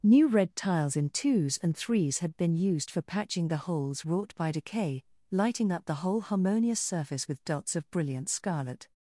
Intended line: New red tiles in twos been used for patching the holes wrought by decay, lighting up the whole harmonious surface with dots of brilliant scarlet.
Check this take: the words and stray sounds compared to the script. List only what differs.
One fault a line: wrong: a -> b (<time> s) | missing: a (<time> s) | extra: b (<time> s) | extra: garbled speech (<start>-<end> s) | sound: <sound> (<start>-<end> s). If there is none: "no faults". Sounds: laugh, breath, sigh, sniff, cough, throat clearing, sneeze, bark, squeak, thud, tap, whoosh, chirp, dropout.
extra: and threes had (1.6 s)